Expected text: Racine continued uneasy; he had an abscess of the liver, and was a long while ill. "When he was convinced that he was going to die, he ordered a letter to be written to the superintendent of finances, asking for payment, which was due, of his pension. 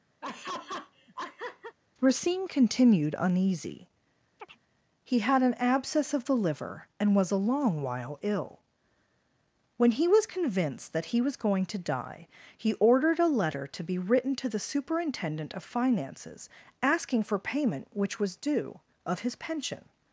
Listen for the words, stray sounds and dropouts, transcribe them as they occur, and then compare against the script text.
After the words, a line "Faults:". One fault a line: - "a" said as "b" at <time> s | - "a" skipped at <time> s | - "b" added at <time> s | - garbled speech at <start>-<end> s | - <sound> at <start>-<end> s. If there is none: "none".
Racine continued uneasy; he had an abscess of the liver, and was a long while ill. "When he was convinced that he was going to die, he ordered a letter to be written to the superintendent of finances, asking for payment, which was due, of his pension.
Faults:
- laugh at 0.2-1.8 s
- chirp at 4.4-4.6 s